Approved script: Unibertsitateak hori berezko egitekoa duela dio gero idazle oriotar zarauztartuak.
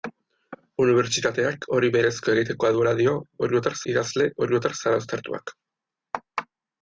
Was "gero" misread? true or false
true